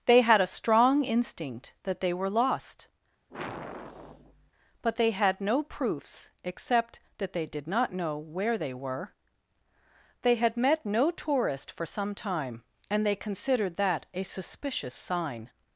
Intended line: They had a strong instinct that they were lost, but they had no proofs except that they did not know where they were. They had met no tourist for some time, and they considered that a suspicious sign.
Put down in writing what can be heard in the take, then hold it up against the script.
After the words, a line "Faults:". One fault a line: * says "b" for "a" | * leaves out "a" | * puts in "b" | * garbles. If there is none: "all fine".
They had a strong instinct that they were lost, but they had no proofs except that they did not know where they were. They had met no tourist for some time, and they considered that a suspicious sign.
Faults:
all fine